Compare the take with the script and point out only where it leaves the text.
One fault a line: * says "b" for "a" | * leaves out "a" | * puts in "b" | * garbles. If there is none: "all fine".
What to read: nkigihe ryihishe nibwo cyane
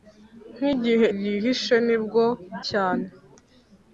all fine